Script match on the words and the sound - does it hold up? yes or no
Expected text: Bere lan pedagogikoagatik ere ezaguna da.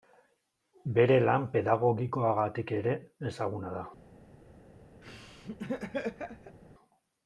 no